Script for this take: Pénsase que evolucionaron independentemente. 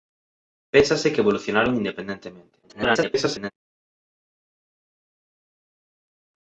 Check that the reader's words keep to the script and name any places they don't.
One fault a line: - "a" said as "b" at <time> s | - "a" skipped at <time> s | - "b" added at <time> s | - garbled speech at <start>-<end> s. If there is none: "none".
- garbled speech at 2.6-3.5 s